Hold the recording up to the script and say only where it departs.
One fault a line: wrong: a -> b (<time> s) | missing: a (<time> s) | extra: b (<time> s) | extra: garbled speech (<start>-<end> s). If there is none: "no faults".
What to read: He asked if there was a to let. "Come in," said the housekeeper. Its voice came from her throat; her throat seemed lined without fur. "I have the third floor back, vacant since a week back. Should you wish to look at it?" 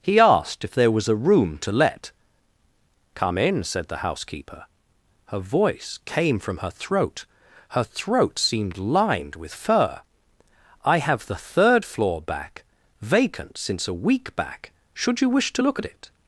extra: room (1.1 s)
wrong: Its -> Her (5.3 s)
wrong: without -> with (9.3 s)